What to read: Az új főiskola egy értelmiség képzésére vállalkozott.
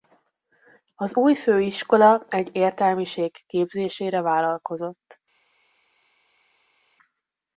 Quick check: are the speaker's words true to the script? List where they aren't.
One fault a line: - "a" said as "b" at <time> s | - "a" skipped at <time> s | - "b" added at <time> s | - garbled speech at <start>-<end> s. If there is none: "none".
none